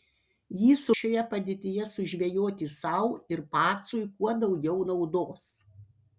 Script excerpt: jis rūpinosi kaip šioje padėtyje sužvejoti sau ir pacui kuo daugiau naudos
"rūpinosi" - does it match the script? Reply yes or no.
no